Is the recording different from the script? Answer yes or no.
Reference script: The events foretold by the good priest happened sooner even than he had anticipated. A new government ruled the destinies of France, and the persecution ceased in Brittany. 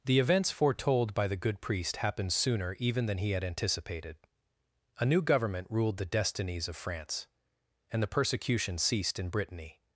no